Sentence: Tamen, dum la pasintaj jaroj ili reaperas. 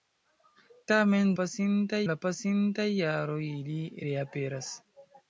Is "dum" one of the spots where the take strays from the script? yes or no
yes